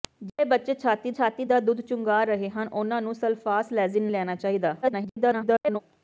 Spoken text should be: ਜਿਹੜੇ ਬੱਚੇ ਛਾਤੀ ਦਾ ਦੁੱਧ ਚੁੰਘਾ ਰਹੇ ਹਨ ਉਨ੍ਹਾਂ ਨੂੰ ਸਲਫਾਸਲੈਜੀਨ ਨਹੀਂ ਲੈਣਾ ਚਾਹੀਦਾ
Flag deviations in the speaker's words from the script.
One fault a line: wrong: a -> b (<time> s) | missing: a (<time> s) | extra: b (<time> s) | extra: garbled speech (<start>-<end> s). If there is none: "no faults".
extra: ਛਾਤੀ (1.1 s)
missing: ਨਹੀਂ (4.1 s)
extra: garbled speech (4.8-5.8 s)